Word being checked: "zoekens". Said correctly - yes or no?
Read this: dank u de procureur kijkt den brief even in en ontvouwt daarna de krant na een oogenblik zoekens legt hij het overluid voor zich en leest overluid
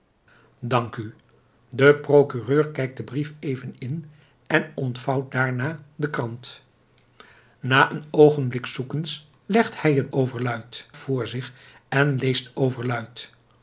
yes